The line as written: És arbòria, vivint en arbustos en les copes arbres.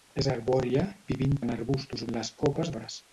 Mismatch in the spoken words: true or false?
false